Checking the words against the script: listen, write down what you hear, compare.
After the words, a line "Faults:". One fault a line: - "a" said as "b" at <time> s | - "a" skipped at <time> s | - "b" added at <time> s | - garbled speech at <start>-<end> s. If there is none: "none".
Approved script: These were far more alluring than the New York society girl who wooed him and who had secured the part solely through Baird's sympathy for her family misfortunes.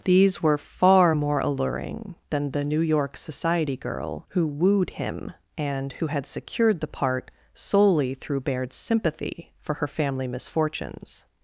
These were far more alluring than the New York society girl who wooed him and who had secured the part solely through Baird's sympathy for her family misfortunes.
Faults:
none